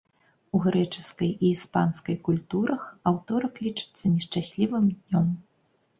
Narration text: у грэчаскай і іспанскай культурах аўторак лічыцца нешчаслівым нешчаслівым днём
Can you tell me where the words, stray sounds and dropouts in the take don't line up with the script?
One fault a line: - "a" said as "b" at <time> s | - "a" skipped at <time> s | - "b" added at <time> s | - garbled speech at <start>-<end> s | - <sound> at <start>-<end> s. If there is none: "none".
- "нешчаслівым" skipped at 4.8 s